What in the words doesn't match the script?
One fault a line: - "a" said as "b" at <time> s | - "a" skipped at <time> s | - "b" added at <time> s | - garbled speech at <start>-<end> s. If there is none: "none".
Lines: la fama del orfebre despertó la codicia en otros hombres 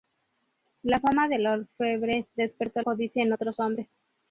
- "la" skipped at 2.8 s